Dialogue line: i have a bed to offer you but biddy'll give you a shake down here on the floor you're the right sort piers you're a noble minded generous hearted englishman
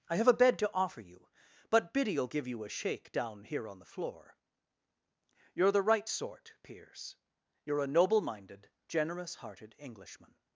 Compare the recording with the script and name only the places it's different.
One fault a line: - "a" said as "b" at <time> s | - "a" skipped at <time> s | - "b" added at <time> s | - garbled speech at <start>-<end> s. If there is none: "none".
none